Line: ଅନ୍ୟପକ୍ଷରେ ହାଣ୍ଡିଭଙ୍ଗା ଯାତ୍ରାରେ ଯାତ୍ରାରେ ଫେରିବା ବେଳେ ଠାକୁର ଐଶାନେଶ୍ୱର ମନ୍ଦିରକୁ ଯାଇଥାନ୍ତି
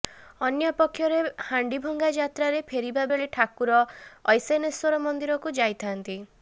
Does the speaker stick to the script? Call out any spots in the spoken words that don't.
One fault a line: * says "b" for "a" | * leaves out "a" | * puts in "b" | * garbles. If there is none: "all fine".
* leaves out "ଯାତ୍ରାରେ"